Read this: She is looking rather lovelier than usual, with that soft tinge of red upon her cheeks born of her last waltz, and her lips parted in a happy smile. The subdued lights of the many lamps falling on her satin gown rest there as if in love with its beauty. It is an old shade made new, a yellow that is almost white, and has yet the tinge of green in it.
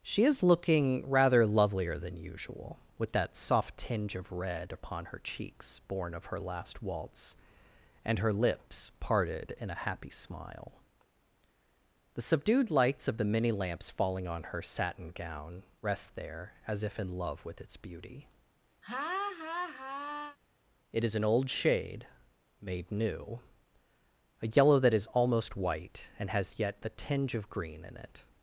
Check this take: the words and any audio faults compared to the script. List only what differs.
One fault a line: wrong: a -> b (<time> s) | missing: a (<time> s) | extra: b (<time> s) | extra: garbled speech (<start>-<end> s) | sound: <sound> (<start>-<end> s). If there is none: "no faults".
sound: laugh (18.8-20.4 s)